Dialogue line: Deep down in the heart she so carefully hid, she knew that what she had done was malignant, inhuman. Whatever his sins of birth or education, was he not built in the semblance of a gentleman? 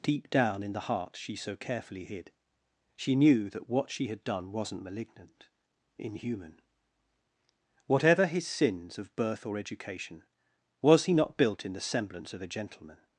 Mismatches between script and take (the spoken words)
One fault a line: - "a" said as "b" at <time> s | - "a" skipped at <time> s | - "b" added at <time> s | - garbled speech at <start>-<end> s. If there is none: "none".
- "was" said as "wasn't" at 4.5 s